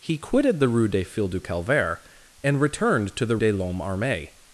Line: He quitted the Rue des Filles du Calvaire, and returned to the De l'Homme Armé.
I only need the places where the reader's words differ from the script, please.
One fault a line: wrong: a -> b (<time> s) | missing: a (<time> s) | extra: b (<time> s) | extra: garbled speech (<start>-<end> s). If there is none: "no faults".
no faults